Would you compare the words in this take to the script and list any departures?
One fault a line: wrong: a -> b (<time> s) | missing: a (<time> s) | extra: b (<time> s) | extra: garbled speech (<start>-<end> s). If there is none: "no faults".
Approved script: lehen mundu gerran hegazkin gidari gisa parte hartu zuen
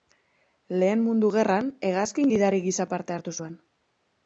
no faults